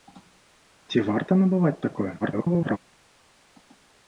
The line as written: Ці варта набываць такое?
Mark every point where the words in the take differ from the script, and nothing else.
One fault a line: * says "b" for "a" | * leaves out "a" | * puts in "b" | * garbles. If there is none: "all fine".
* garbles